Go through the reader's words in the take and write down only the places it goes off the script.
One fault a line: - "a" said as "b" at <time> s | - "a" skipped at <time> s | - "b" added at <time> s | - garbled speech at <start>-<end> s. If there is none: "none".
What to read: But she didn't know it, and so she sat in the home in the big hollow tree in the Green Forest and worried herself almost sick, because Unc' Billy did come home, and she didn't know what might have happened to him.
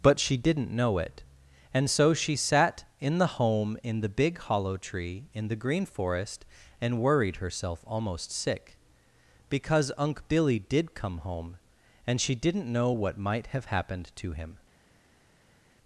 none